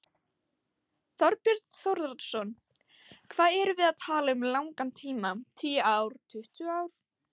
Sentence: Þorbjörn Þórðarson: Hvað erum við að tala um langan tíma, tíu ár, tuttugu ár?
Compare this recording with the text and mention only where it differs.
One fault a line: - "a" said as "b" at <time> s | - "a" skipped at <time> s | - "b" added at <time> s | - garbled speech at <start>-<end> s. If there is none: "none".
none